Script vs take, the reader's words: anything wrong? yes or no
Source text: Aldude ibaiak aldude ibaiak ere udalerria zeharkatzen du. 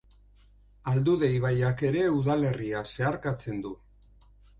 yes